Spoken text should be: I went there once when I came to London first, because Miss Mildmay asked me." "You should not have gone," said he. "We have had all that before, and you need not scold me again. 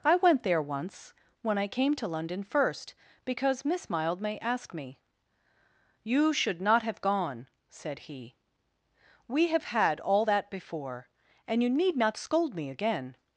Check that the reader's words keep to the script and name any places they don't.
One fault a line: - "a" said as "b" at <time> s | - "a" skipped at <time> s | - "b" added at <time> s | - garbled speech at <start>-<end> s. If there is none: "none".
none